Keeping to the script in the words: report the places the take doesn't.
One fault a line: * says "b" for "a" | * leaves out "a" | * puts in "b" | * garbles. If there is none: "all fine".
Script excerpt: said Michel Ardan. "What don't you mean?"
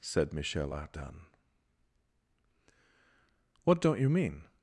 all fine